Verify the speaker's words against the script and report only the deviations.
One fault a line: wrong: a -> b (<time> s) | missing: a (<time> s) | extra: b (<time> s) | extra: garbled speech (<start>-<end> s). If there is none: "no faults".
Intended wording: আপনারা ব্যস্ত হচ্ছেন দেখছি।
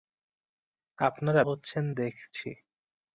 missing: ব্যস্ত (1.4 s)